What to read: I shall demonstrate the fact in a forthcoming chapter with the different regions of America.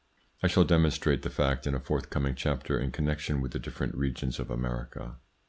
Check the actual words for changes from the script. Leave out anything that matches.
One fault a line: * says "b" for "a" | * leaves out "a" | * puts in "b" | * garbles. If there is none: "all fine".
* puts in "in connection"